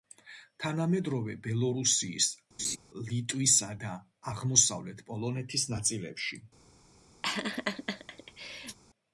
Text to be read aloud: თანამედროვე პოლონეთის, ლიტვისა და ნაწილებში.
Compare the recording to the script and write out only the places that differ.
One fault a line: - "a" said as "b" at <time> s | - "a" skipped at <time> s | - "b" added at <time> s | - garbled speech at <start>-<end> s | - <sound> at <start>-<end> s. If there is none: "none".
- "პოლონეთის" said as "ბელორუსიის" at 1.5 s
- laugh at 2.6-2.8 s
- "აღმოსავლეთ პოლონეთის" added at 4.3 s
- laugh at 7.2-8.8 s